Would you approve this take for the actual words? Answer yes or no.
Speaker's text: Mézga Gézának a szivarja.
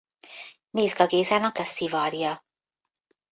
yes